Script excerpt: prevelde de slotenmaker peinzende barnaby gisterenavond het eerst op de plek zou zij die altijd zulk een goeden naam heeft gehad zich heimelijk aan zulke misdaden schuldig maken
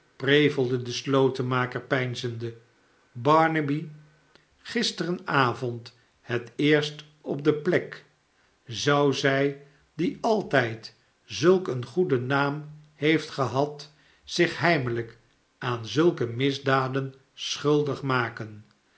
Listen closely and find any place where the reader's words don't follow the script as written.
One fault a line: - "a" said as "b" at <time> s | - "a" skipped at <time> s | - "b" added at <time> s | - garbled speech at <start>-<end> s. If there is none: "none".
none